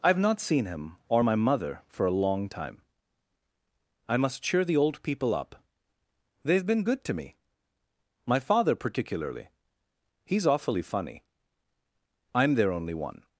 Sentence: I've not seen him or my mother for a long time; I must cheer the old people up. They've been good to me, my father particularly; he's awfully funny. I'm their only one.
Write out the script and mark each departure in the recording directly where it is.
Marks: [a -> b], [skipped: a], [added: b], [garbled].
I've not seen him or my mother for a long time; I must cheer the old people up. They've been good to me, my father particularly; he's awfully funny. I'm their only one.